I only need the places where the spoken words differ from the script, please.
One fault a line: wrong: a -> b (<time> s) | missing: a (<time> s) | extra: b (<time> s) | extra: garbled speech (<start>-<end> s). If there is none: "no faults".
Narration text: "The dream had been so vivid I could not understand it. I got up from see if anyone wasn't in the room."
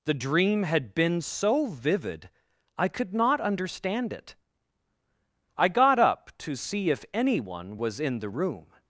wrong: from -> to (6.4 s)
wrong: wasn't -> was (7.8 s)